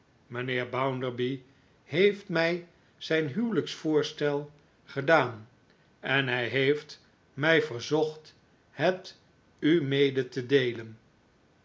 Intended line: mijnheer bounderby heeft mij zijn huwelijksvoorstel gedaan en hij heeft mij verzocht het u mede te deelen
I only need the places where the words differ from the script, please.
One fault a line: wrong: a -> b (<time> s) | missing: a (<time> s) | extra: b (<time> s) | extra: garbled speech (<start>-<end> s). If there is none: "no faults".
no faults